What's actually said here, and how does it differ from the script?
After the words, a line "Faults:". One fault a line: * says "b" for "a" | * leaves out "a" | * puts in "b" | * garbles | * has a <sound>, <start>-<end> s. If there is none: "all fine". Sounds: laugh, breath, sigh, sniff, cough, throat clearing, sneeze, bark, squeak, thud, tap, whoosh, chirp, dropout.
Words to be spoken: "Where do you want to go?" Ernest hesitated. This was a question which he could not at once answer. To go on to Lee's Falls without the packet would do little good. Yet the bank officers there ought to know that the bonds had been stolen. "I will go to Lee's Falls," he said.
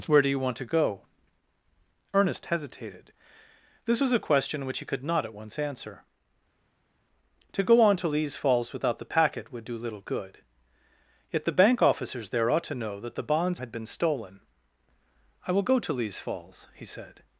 "Where do you want to go?" Ernest hesitated. This was a question which he could not at once answer. To go on to Lee's Falls without the packet would do little good. Yet the bank officers there ought to know that the bonds had been stolen. "I will go to Lee's Falls," he said.
Faults:
all fine